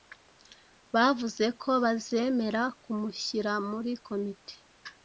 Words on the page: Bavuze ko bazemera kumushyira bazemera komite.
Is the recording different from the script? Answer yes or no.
yes